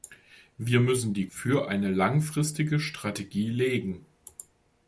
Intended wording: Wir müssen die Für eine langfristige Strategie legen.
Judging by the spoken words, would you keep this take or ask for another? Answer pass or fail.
pass